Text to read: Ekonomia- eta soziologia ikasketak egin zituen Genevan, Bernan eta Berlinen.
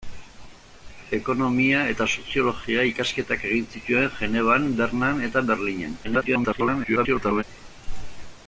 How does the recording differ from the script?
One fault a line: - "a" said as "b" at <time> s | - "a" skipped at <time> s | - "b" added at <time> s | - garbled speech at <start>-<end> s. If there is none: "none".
- garbled speech at 6.0-7.4 s